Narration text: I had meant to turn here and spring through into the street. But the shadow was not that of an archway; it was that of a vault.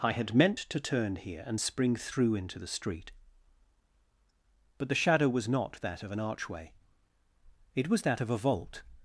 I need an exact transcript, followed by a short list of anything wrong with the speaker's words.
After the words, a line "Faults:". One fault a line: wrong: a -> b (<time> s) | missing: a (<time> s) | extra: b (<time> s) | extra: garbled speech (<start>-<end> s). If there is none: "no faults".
I had meant to turn here and spring through into the street. But the shadow was not that of an archway; it was that of a vault.
Faults:
no faults